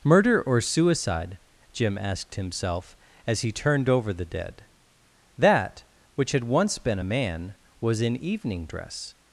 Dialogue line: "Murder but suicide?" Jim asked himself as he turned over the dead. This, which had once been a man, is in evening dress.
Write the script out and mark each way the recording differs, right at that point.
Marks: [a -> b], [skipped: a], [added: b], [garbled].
"Murder [but -> or] suicide?" Jim asked himself as he turned over the dead. [This, -> That] which had once been a man, [is -> was] in evening dress.